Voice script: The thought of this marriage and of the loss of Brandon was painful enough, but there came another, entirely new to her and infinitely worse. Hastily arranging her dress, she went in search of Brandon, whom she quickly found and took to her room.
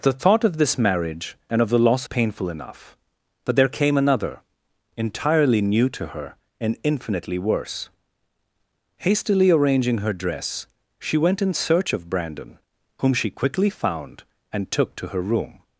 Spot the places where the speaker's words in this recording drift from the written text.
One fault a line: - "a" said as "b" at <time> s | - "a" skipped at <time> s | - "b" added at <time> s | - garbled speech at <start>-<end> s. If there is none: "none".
- "of Brandon was" skipped at 2.1 s